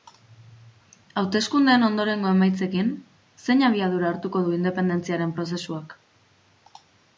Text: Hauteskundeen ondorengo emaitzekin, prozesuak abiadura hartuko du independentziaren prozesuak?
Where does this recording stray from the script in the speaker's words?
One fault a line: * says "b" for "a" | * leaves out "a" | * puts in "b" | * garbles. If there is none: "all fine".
* says "zein" for "prozesuak"